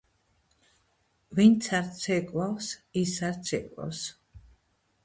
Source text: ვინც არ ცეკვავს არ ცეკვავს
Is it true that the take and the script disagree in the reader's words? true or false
true